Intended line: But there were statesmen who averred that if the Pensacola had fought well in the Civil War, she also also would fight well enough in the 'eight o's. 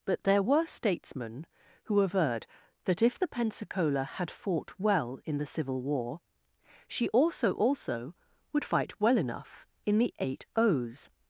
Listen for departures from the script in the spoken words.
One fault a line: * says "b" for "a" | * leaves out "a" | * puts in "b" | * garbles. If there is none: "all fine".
all fine